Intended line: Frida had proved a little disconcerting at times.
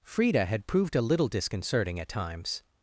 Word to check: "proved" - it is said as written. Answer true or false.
true